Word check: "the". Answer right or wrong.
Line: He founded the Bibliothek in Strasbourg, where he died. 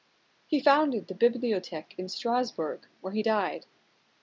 right